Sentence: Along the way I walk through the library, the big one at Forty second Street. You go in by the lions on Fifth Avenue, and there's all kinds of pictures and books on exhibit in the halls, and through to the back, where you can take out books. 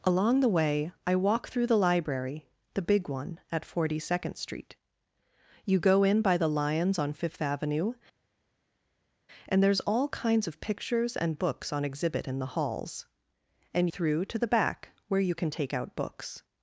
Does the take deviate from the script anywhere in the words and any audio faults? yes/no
no